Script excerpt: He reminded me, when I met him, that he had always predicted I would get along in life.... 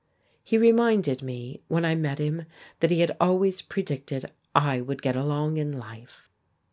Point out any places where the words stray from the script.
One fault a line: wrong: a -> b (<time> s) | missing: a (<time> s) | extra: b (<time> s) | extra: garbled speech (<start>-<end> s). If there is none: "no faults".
no faults